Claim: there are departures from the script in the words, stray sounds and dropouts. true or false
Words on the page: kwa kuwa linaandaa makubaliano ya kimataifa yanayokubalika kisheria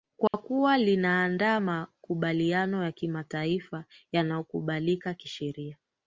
true